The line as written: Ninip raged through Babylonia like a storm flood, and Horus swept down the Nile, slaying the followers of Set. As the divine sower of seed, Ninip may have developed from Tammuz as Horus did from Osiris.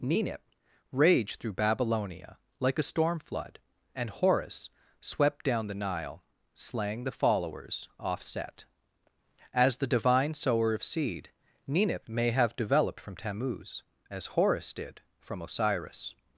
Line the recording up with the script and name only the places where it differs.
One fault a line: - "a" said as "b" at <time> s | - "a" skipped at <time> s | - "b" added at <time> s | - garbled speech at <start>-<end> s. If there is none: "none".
- "of" said as "off" at 8.0 s